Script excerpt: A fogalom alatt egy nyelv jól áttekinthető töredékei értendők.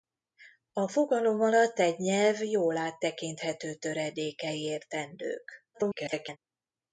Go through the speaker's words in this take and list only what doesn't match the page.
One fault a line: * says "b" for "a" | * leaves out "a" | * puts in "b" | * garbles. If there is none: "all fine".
* garbles